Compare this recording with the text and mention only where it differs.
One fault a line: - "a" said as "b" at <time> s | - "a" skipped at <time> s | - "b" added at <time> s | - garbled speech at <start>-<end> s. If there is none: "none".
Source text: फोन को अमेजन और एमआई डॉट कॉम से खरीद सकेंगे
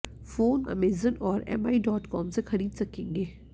- "को" skipped at 0.6 s